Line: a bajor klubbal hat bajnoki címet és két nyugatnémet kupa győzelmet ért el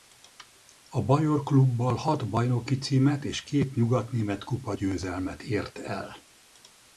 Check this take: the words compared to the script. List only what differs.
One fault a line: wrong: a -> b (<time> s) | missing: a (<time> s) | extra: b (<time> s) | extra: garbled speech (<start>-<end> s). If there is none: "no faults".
no faults